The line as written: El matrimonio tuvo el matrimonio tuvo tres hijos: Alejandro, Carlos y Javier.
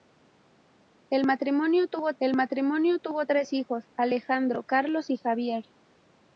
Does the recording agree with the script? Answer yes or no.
yes